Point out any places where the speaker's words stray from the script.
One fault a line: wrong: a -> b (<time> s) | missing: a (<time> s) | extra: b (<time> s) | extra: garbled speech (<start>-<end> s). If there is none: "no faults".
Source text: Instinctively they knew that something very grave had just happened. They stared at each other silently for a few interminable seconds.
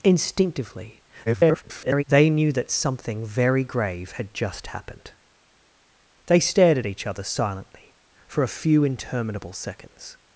extra: garbled speech (1.3-2.0 s)